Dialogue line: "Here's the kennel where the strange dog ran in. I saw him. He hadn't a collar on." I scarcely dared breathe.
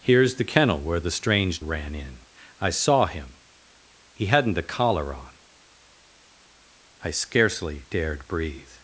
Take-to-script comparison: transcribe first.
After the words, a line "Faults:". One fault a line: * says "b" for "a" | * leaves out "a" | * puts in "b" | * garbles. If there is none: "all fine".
"Here's the kennel where the strange ran in. I saw him. He hadn't a collar on." I scarcely dared breathe.
Faults:
* leaves out "dog"